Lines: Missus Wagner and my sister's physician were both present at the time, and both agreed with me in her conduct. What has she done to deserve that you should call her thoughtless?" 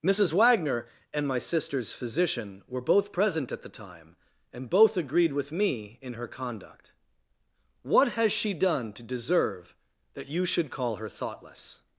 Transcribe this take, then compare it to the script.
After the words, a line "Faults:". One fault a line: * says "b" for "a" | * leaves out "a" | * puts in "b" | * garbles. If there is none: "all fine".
Missus Wagner and my sister's physician were both present at the time, and both agreed with me in her conduct. What has she done to deserve that you should call her thoughtless?"
Faults:
all fine